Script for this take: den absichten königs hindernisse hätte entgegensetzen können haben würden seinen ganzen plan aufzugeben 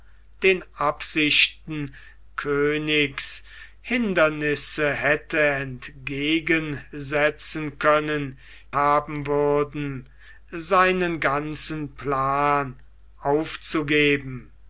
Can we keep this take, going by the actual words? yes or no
yes